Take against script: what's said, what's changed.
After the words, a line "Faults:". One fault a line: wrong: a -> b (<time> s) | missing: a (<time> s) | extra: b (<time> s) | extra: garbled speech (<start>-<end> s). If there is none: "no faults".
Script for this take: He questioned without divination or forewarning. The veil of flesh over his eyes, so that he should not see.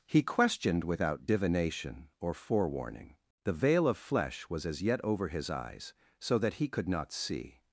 He questioned without divination or forewarning. The veil of flesh was as yet over his eyes, so that he could not see.
Faults:
extra: was as yet (4.5 s)
wrong: should -> could (6.7 s)